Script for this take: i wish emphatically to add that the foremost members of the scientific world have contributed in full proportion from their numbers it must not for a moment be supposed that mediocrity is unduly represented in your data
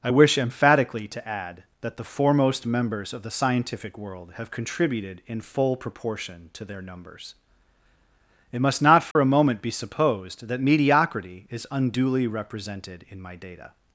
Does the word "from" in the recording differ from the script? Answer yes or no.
yes